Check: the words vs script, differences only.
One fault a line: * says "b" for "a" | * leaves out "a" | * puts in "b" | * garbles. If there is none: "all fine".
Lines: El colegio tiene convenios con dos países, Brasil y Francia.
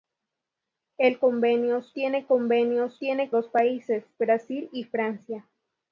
* says "convenios" for "colegio"
* says "tiene" for "con"